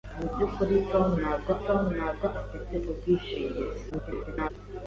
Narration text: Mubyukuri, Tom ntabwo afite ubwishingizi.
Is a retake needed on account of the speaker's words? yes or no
yes